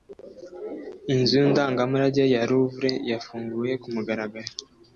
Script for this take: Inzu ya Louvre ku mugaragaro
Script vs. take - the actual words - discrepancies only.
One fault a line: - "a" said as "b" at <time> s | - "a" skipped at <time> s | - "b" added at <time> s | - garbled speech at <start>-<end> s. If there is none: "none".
- "ndangamurage" added at 1.5 s
- "yafunguwe" added at 3.1 s